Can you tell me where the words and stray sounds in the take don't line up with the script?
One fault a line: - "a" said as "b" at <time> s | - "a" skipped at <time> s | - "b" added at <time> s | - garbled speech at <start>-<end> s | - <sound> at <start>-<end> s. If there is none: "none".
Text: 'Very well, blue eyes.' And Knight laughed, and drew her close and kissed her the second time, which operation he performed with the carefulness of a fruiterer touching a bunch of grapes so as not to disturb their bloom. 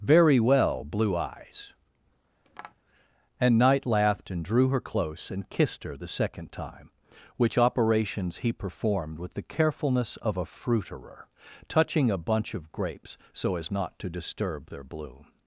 - tap at 2.5-2.8 s
- "operation" said as "operations" at 7.6 s